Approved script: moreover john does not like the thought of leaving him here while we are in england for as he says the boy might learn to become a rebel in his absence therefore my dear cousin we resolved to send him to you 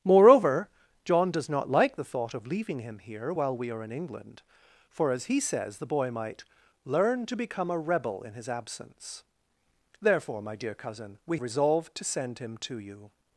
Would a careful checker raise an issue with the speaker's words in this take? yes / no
no